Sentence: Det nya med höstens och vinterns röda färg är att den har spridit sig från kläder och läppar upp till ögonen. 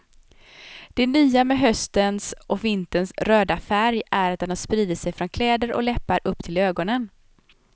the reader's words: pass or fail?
pass